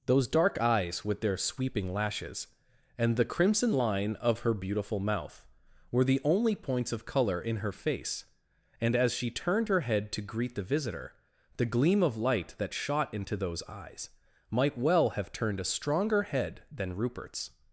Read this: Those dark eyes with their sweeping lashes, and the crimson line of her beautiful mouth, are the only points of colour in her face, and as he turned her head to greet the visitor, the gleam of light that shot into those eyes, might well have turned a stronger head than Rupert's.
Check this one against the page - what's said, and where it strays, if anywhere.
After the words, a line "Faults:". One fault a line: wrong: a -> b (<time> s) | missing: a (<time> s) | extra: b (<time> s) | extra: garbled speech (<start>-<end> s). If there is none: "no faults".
Those dark eyes with their sweeping lashes, and the crimson line of her beautiful mouth, were the only points of colour in her face, and as she turned her head to greet the visitor, the gleam of light that shot into those eyes, might well have turned a stronger head than Rupert's.
Faults:
wrong: are -> were (5.9 s)
wrong: he -> she (9.1 s)